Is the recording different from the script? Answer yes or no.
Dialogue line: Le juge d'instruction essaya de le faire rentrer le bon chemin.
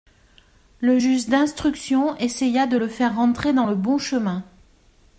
yes